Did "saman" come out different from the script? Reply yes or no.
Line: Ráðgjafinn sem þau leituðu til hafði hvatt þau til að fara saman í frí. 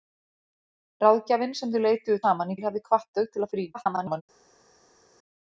yes